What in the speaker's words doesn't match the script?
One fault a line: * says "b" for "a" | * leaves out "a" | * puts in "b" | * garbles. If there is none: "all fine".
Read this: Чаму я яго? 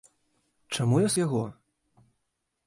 all fine